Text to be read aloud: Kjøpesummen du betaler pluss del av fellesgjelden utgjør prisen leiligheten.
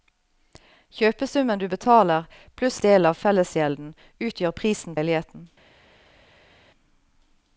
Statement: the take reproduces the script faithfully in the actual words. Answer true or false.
true